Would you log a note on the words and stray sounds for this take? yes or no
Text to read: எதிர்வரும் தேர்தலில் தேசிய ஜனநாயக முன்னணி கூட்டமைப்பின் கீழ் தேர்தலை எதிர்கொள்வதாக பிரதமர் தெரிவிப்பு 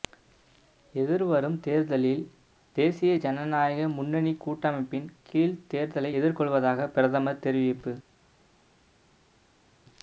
no